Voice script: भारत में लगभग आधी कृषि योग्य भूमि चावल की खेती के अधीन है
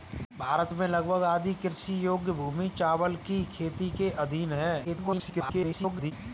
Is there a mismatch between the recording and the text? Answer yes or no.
yes